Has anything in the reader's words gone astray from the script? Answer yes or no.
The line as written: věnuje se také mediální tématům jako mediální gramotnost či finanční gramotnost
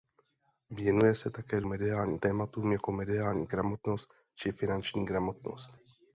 no